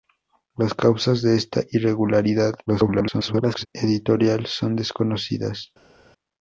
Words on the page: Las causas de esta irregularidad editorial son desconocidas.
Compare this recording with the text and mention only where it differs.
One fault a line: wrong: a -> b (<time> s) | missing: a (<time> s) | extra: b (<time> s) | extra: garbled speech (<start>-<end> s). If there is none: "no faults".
extra: garbled speech (2.7-3.7 s)